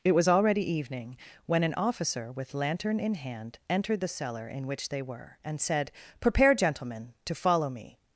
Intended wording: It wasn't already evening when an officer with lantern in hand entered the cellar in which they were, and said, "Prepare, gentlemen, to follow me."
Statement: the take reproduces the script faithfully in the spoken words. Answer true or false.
false